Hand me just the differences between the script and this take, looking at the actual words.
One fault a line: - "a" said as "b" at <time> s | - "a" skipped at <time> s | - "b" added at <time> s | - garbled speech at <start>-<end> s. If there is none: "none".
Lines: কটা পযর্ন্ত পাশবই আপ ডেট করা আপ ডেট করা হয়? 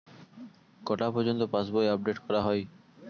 - "আপ ডেট করা" skipped at 2.4 s